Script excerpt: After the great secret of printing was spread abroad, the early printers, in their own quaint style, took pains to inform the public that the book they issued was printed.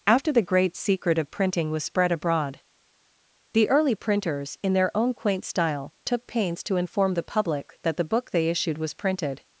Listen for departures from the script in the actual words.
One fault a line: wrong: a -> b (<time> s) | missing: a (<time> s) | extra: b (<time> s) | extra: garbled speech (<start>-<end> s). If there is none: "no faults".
no faults